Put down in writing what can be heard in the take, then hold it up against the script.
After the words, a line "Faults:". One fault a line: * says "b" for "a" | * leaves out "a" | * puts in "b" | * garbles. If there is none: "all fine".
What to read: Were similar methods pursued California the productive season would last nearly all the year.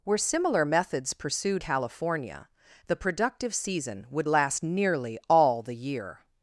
Were similar methods pursued California the productive season would last nearly all the year.
Faults:
all fine